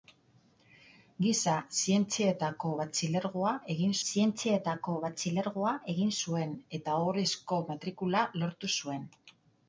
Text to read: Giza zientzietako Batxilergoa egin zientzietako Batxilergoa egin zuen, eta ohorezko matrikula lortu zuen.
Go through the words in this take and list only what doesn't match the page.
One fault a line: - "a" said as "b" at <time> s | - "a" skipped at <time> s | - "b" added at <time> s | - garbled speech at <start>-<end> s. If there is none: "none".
none